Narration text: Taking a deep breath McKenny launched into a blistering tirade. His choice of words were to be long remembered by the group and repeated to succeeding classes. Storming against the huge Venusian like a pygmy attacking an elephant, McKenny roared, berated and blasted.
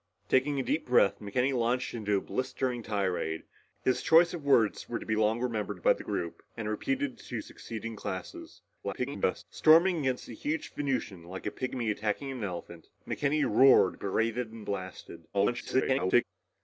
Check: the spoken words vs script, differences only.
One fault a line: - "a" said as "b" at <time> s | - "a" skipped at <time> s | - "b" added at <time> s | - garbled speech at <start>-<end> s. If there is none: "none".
- garbled speech at 8.8-9.4 s
- garbled speech at 15.3-16.2 s